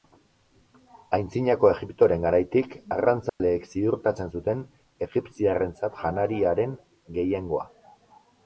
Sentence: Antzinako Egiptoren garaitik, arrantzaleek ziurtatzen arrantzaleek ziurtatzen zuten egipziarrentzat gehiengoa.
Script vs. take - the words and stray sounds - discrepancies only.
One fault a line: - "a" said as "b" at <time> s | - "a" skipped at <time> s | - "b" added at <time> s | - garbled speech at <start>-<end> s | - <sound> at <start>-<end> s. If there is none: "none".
- dropout at 3.3-3.4 s
- "arrantzaleek ziurtatzen" skipped at 4.3 s
- "janariaren" added at 6.0 s